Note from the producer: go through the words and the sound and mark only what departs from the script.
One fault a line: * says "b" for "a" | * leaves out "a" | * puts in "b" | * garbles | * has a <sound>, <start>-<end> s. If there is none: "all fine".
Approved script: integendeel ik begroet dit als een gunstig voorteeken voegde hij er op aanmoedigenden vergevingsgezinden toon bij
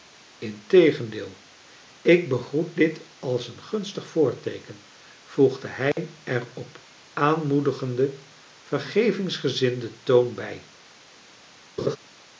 * has a dropout, 5.9-6.0 s
* has a laugh, 11.8-12.0 s